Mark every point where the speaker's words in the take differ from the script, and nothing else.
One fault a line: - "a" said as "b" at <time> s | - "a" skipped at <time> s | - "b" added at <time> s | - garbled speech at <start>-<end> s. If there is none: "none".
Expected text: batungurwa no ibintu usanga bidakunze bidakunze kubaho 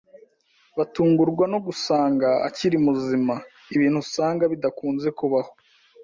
- "gusanga akiri muzima" added at 1.6 s
- "bidakunze" skipped at 5.1 s